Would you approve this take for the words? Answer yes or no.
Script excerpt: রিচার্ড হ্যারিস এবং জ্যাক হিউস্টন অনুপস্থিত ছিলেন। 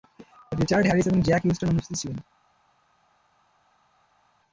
yes